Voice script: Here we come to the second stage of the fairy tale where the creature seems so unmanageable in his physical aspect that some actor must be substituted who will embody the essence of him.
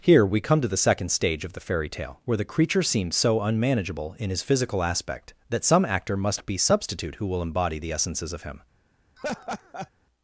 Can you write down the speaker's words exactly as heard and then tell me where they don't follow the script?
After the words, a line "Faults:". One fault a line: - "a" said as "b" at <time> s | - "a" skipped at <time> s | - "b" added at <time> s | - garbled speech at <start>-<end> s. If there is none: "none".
Here we come to the second stage of the fairy tale where the creature seems so unmanageable in his physical aspect that some actor must be substitute who will embody the essences of him.
Faults:
- "substituted" said as "substitute" at 6.6 s
- "essence" said as "essences" at 7.9 s